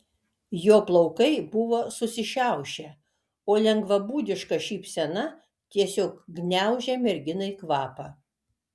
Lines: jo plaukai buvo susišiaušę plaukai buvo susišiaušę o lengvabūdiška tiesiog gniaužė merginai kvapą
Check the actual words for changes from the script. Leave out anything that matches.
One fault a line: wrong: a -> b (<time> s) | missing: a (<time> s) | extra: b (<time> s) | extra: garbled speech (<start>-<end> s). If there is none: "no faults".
missing: plaukai buvo susišiaušę (2.9 s)
extra: šypsena (4.7 s)